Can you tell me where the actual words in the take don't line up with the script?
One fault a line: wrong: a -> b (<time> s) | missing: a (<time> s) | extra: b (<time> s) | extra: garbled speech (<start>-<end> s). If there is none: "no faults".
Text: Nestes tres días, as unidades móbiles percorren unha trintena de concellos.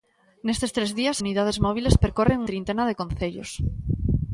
missing: as (1.2 s)
missing: unha (2.4 s)